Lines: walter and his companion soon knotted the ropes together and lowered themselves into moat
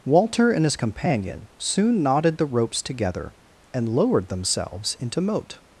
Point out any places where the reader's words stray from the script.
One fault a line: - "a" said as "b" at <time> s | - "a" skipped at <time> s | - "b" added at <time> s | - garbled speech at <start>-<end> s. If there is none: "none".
none